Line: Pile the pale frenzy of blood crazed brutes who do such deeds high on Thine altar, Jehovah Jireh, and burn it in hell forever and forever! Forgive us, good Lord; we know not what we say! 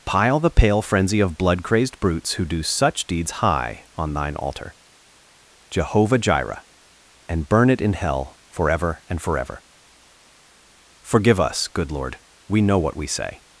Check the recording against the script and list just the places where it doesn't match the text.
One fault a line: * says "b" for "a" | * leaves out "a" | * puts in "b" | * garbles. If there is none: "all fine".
* leaves out "not"